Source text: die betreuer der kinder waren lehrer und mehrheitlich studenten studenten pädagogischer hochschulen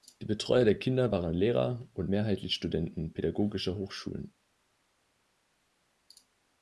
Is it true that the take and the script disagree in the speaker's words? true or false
true